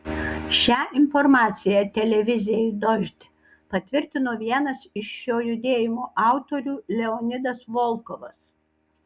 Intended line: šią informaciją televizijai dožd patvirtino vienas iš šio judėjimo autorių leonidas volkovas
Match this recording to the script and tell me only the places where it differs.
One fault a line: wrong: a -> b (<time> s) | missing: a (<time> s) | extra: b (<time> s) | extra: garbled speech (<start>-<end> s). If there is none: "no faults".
no faults